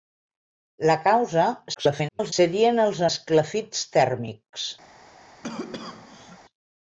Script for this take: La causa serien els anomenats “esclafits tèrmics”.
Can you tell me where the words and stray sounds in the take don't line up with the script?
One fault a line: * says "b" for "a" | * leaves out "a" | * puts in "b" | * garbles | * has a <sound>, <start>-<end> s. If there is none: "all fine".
* garbles
* leaves out "anomenats"
* has a cough, 5.4-6.4 s